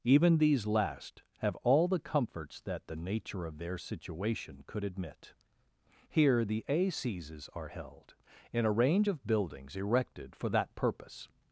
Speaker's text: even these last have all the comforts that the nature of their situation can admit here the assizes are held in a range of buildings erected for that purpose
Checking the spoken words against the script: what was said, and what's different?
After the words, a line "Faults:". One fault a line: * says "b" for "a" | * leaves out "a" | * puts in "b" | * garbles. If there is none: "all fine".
even these last have all the comforts that the nature of their situation could admit here the assizes are held in a range of buildings erected for that purpose
Faults:
* says "could" for "can"